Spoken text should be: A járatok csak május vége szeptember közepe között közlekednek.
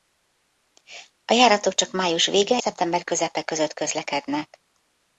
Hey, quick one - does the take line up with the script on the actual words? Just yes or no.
yes